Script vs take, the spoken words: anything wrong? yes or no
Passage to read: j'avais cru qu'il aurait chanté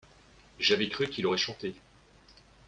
no